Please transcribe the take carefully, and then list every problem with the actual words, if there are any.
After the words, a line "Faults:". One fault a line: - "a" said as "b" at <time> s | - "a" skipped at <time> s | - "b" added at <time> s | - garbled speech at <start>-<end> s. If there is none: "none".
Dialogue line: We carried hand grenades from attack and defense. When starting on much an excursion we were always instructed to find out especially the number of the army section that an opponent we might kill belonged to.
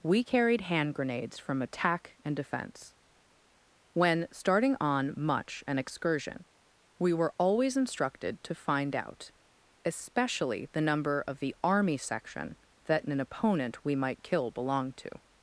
We carried hand grenades from attack and defense. When starting on much an excursion we were always instructed to find out especially the number of the army section that an opponent we might kill belonged to.
Faults:
none